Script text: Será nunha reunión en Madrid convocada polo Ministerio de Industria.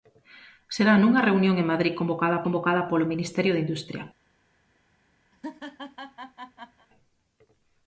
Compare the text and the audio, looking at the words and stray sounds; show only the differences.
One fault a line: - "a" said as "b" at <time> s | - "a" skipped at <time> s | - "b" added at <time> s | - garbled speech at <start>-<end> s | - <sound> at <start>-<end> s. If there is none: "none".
- "convocada" added at 2.4 s
- laugh at 5.3-6.9 s